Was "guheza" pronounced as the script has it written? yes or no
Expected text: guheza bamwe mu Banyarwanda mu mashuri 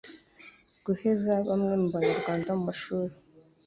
yes